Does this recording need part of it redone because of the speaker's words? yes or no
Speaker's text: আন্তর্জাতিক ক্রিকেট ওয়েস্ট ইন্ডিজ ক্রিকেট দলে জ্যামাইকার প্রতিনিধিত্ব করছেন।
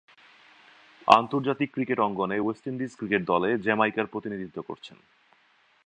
yes